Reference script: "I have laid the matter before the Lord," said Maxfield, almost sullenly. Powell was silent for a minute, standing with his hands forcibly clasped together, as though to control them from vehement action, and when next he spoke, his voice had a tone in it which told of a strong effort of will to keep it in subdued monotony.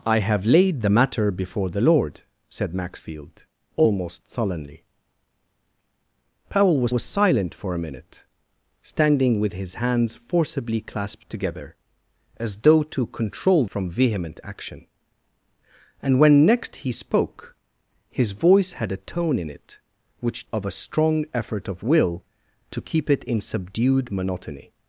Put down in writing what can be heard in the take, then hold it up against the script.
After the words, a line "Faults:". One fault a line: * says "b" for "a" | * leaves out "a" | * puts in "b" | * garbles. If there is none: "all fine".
"I have laid the matter before the Lord," said Maxfield, almost sullenly. Powell was was silent for a minute, standing with his hands forcibly clasped together, as though to control from vehement action, and when next he spoke, his voice had a tone in it which of a strong effort of will to keep it in subdued monotony.
Faults:
* puts in "was"
* leaves out "them"
* leaves out "told"